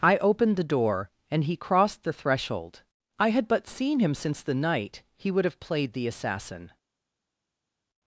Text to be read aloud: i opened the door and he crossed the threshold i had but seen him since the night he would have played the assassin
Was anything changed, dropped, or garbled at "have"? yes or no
no